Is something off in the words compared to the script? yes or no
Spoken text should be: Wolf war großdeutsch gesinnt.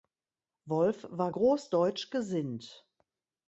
no